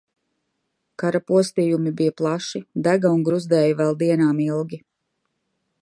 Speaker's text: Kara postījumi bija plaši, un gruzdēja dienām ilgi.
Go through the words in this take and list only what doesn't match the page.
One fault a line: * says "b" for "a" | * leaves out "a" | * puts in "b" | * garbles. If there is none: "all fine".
* puts in "dega"
* puts in "vēl"